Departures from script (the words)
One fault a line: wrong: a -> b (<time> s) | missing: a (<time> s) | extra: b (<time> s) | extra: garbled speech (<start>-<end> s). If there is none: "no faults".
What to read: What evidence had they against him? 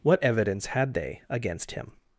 no faults